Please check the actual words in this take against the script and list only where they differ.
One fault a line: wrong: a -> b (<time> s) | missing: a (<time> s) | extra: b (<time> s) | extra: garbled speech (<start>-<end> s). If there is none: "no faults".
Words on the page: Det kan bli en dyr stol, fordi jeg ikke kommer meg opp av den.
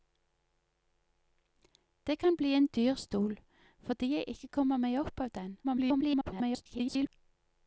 extra: garbled speech (5.6-7.1 s)